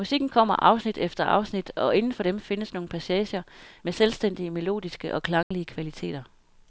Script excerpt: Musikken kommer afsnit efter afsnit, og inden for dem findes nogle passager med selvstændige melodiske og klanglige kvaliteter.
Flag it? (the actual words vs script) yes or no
no